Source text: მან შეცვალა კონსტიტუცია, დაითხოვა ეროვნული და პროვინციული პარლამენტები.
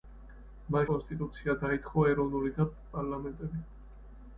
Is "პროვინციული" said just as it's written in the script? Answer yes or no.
no